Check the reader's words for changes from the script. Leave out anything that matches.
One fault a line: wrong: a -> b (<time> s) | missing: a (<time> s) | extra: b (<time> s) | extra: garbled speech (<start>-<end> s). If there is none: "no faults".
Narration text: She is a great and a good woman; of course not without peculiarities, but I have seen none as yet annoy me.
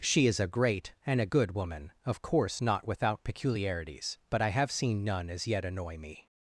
no faults